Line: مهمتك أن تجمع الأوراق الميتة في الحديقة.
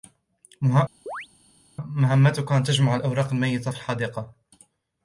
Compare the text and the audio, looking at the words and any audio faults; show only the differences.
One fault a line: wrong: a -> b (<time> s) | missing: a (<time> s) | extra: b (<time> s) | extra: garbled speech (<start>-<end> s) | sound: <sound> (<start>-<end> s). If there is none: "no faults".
sound: chirp (1.1-1.3 s)